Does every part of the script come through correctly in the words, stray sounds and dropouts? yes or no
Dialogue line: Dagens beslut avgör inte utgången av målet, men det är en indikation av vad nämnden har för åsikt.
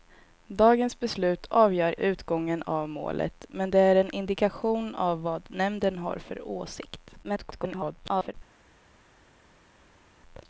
no